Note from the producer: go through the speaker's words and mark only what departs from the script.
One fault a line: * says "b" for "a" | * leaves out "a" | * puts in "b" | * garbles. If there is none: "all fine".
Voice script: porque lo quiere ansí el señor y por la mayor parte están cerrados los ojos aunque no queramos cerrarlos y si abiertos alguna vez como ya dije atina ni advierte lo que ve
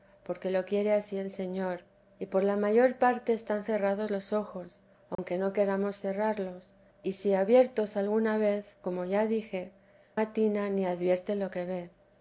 all fine